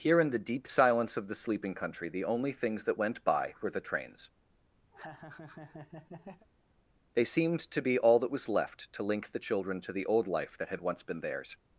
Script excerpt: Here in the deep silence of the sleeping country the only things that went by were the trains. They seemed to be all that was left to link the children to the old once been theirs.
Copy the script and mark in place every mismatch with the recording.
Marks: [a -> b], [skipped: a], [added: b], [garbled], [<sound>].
Here in the deep silence of the sleeping country the only things that went by were the trains. [laugh] They seemed to be all that was left to link the children to the old [added: life that had] once been theirs.